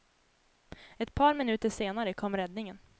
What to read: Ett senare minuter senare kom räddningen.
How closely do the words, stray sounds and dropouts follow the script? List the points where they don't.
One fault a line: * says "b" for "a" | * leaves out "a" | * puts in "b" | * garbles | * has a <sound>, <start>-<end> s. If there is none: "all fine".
* says "par" for "senare"